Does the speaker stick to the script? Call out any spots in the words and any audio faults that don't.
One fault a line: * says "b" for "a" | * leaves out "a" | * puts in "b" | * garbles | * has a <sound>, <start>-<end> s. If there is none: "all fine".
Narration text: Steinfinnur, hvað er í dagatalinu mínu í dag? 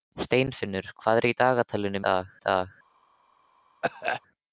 * says "dag" for "mínu"
* has a cough, 3.8-4.2 s